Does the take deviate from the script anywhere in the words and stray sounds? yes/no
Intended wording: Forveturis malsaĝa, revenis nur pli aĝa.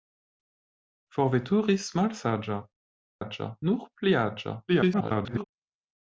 yes